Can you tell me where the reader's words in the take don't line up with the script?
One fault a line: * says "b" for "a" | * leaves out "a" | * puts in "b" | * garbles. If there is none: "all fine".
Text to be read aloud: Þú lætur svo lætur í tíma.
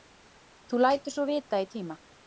* says "vita" for "lætur"